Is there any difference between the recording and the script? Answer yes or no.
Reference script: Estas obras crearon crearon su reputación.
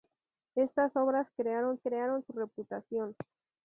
no